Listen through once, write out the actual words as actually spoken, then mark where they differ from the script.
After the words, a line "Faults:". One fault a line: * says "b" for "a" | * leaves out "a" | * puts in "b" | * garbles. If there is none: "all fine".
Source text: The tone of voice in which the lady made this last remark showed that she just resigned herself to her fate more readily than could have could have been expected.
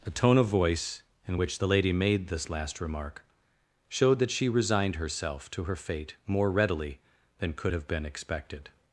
The tone of voice in which the lady made this last remark showed that she resigned herself to her fate more readily than could have been expected.
Faults:
* leaves out "just"
* leaves out "could have"